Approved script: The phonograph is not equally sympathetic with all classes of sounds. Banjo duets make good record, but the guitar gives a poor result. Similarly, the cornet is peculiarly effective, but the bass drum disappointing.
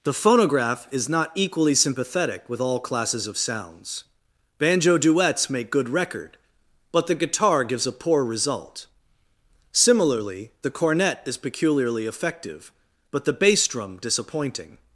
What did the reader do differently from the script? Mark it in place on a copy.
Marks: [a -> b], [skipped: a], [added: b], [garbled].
The phonograph is not equally sympathetic with all classes of sounds. Banjo duets make good record, but the guitar gives a poor result. Similarly, the cornet is peculiarly effective, but the bass drum disappointing.